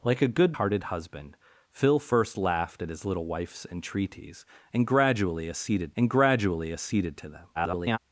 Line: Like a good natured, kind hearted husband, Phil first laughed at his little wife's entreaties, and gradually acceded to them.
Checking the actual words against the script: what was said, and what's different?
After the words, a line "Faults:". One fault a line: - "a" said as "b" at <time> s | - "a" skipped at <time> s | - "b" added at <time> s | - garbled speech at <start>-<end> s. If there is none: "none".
Like a good hearted husband, Phil first laughed at his little wife's entreaties, and gradually acceded and gradually acceded to them. [garbled]
Faults:
- "natured kind" skipped at 0.6 s
- "and gradually acceded" added at 6.0 s
- garbled speech at 7.5-8.0 s